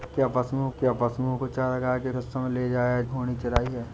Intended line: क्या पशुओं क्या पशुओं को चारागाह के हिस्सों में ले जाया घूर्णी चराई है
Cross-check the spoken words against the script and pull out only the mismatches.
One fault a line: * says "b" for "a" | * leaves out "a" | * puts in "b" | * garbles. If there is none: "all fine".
all fine